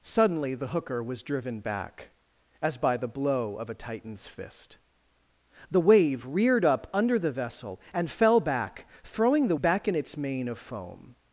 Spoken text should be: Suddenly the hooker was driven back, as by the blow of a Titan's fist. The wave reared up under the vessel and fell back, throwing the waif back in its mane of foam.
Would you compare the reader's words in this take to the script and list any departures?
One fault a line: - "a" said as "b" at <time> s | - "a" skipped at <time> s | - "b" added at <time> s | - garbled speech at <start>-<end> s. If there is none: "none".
- "waif" skipped at 9.6 s